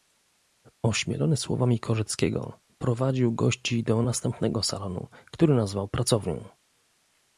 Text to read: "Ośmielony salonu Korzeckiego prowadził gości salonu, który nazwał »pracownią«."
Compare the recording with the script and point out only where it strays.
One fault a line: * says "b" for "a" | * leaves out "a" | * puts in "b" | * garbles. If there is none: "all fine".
* says "słowami" for "salonu"
* puts in "do następnego"